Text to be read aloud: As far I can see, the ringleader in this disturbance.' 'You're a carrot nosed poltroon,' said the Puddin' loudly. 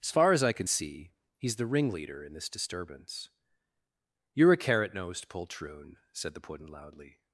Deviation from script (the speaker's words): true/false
true